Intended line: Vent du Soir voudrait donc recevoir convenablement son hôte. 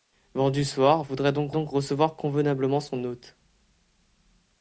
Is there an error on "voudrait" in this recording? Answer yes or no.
no